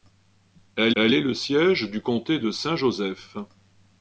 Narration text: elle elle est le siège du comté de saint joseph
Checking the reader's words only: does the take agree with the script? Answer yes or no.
yes